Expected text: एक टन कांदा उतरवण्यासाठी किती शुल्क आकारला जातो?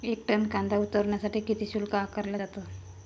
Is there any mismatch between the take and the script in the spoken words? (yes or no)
no